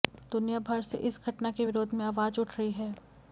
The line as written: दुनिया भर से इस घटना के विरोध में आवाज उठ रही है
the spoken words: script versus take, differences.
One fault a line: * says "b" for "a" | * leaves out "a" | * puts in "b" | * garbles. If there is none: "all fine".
all fine